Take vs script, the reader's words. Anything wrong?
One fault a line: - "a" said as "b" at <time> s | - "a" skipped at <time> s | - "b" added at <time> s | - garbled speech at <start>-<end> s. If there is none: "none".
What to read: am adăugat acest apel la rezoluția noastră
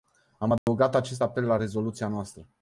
none